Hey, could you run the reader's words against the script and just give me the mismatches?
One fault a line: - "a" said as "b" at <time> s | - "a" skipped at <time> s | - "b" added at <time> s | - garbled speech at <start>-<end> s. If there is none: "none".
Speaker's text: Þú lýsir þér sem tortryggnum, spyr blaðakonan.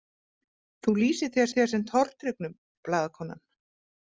- "þér" added at 1.6 s
- "spyr" skipped at 2.5 s